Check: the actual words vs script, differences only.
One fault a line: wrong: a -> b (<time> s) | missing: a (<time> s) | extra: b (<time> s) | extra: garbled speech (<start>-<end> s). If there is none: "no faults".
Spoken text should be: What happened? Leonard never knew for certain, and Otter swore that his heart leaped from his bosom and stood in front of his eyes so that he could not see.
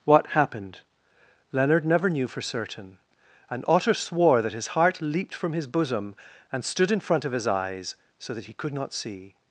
no faults